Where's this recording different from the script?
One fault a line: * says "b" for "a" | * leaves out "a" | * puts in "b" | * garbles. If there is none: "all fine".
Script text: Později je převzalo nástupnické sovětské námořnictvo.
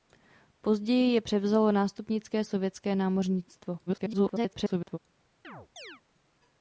* garbles